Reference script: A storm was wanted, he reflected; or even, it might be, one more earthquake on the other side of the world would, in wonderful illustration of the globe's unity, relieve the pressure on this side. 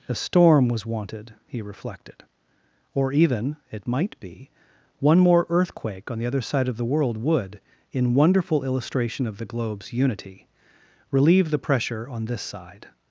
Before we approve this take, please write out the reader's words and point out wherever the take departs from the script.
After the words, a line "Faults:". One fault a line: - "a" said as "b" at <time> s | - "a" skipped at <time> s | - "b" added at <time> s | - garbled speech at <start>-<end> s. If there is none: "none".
A storm was wanted, he reflected; or even, it might be, one more earthquake on the other side of the world would, in wonderful illustration of the globe's unity, relieve the pressure on this side.
Faults:
none